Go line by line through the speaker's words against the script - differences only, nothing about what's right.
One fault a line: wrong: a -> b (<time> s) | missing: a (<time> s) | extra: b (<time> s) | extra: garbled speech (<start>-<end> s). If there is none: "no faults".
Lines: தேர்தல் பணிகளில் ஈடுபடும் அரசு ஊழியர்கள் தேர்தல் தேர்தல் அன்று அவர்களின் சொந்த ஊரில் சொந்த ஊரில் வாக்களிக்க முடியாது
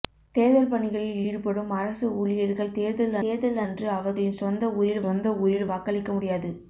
no faults